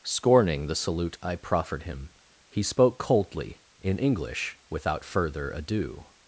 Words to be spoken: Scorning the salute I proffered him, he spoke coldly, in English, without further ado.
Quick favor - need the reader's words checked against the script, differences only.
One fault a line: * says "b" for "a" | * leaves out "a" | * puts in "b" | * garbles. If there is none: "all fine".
all fine